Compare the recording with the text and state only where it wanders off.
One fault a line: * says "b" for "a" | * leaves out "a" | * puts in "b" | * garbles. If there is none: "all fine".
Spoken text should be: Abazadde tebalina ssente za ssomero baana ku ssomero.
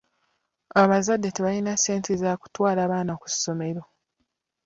* says "kutwala" for "ssomero"